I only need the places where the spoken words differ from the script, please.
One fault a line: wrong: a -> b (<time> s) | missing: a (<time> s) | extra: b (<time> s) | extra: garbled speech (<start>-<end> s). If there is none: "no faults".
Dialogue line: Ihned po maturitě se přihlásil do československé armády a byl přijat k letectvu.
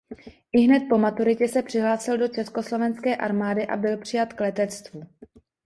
no faults